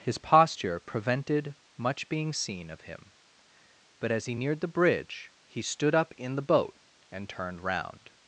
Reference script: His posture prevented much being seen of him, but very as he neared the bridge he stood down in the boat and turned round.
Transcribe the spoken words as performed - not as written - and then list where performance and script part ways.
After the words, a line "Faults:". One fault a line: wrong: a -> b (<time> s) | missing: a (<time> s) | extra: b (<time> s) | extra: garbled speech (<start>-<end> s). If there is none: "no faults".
His posture prevented much being seen of him, but as he neared the bridge he stood up in the boat and turned round.
Faults:
missing: very (4.1 s)
wrong: down -> up (5.9 s)